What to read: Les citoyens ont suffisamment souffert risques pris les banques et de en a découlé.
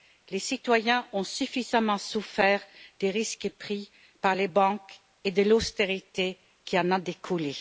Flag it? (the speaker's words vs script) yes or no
yes